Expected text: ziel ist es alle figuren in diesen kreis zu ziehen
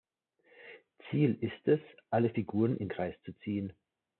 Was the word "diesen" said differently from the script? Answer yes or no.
yes